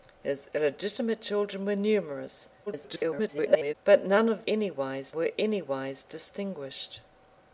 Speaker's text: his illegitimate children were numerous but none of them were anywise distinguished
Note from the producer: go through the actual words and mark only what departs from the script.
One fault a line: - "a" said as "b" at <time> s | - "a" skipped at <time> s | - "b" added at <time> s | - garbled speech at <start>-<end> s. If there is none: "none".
- garbled speech at 2.7-3.7 s
- "them" said as "anywise" at 4.5 s